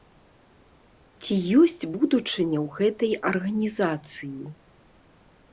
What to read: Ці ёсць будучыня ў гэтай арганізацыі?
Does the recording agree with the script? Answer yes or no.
yes